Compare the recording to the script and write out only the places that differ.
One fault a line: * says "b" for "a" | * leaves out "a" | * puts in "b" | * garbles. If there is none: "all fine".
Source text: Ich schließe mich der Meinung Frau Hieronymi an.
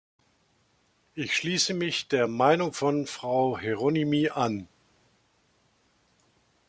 * puts in "von"